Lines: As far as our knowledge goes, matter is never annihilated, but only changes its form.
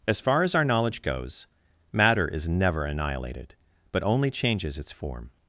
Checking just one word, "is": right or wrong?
right